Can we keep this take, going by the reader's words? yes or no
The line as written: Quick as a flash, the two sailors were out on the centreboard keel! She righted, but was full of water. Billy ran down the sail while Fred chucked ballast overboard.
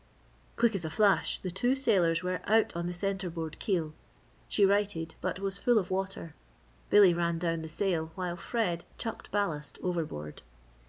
yes